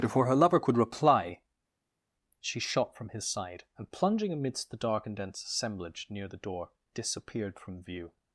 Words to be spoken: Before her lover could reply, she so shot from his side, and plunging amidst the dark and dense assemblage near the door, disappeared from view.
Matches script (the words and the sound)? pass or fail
fail